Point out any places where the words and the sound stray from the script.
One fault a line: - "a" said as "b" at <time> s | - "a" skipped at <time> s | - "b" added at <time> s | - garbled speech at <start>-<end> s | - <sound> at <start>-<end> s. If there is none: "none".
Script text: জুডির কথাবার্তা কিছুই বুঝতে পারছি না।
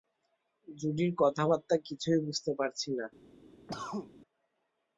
- cough at 3.7-4.1 s